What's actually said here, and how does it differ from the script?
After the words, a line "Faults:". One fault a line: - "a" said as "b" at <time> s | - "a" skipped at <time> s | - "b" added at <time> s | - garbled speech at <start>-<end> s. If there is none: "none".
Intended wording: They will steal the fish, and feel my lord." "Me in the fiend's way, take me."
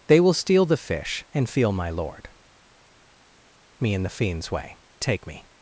They will steal the fish, and feel my lord." "Me in the fiend's way, take me."
Faults:
none